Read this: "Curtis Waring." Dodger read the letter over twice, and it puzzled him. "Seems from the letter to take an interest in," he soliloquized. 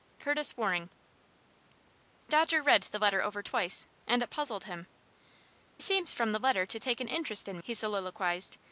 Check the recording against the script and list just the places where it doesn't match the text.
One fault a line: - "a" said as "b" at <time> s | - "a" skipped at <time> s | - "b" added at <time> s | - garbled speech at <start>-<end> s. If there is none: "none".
none